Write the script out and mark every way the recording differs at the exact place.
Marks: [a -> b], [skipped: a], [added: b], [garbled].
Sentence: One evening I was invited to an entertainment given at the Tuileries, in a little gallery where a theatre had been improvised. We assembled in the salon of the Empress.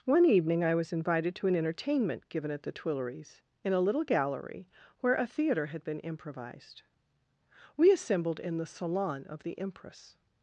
One evening I was invited to an entertainment given at the Tuileries, in a little gallery where a theatre had been improvised. We assembled in the salon of the Empress.